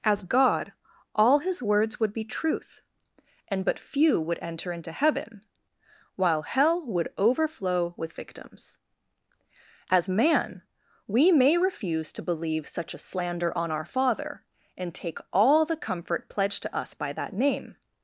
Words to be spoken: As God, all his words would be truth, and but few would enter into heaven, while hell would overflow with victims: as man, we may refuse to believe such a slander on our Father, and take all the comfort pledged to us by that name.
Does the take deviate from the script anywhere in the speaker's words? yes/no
no